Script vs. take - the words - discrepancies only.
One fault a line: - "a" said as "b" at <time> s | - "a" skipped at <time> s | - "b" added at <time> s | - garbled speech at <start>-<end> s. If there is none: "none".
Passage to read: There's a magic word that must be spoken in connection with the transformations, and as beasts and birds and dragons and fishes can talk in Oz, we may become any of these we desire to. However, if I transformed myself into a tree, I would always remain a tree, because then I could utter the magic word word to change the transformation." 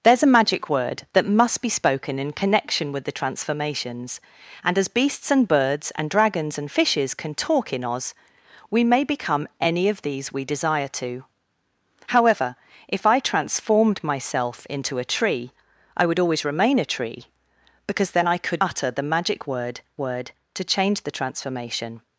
none